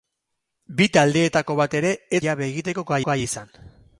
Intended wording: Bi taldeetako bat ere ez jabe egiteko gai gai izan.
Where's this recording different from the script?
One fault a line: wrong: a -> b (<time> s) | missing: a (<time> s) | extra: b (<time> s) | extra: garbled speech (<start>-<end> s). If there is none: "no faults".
no faults